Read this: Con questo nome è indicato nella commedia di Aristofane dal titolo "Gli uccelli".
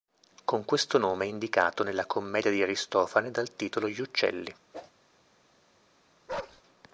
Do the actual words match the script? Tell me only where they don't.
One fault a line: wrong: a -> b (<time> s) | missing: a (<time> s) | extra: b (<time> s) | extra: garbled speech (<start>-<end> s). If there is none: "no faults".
no faults